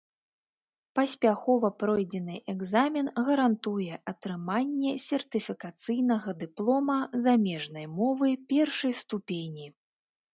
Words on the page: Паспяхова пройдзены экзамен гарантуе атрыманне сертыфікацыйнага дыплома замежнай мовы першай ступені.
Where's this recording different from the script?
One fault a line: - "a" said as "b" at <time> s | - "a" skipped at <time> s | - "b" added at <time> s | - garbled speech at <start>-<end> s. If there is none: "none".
none